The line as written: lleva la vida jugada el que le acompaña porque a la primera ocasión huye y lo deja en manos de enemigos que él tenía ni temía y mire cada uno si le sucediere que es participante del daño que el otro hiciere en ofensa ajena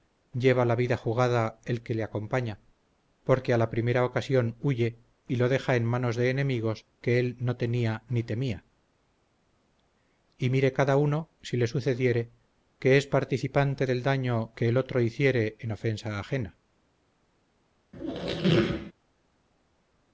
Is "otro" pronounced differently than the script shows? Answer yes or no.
no